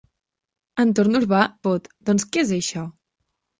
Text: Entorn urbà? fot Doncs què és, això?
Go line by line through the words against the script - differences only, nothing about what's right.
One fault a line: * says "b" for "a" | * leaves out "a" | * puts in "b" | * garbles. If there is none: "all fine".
all fine